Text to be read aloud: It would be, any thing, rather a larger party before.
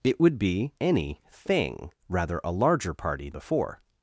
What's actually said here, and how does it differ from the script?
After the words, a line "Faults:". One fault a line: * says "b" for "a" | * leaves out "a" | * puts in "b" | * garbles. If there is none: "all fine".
It would be, any thing, rather a larger party before.
Faults:
all fine